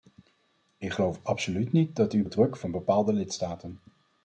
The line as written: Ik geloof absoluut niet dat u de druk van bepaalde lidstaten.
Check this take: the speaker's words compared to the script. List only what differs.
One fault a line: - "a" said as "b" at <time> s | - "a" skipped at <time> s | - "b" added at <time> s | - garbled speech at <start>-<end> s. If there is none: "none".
none